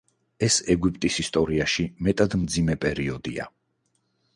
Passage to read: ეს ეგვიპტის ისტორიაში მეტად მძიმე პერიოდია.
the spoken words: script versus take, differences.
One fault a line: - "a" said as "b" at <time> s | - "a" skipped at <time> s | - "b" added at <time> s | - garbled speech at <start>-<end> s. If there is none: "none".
none